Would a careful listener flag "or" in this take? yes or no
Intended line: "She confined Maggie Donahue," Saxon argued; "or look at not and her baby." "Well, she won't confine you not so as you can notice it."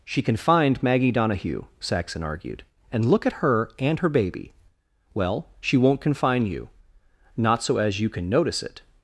yes